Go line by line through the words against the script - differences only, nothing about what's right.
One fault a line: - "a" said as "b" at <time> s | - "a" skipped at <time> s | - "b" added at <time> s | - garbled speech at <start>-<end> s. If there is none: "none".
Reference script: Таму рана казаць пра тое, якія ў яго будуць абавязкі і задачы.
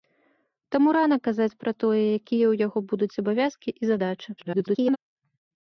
- garbled speech at 4.4-5.0 s